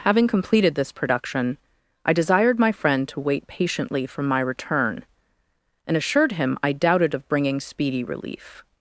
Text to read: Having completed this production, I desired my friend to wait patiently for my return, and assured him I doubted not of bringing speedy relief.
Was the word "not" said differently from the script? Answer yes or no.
yes